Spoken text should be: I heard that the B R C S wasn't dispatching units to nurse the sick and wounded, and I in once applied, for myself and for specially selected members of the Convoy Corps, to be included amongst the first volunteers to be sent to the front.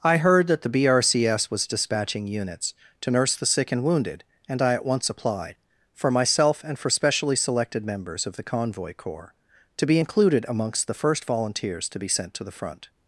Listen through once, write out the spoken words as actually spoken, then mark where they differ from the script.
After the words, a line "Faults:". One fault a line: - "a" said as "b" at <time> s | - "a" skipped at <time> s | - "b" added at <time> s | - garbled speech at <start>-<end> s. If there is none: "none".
I heard that the B R C S was dispatching units to nurse the sick and wounded, and I at once applied, for myself and for specially selected members of the Convoy Corps, to be included amongst the first volunteers to be sent to the front.
Faults:
- "wasn't" said as "was" at 1.5 s
- "in" said as "at" at 4.7 s